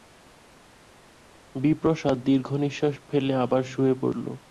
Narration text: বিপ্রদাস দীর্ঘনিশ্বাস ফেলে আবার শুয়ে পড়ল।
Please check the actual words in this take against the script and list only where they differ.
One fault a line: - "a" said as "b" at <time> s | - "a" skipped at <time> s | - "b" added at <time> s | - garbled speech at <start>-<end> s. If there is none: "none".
none